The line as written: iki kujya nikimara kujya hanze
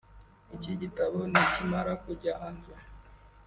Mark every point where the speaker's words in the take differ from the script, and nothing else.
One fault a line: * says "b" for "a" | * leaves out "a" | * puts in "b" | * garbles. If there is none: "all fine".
* says "gitabo" for "kujya"